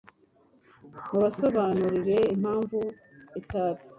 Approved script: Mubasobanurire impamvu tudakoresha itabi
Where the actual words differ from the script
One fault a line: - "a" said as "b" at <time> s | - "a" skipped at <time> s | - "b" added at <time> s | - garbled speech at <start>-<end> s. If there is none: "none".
- "tudakoresha" skipped at 2.8 s